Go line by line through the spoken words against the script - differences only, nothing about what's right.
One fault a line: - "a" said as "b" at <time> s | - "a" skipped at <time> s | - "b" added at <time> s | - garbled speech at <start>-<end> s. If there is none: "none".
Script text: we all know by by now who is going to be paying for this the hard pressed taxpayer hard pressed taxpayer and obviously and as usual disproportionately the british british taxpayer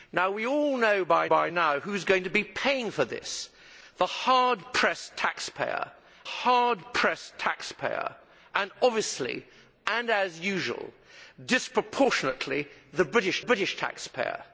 none